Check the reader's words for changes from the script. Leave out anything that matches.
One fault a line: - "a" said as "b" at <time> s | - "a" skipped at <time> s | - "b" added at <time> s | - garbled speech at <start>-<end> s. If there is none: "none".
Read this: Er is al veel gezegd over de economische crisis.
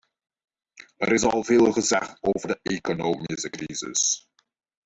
none